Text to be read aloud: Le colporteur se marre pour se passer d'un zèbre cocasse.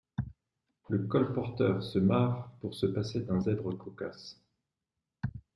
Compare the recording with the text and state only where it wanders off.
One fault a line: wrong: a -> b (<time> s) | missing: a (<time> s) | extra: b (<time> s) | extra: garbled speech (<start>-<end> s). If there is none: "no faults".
no faults